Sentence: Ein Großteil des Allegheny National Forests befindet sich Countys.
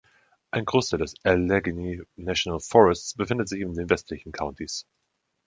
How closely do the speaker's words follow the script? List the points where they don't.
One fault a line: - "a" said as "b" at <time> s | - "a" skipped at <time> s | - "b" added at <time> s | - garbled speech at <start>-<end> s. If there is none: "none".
- "in den westlichen" added at 3.6 s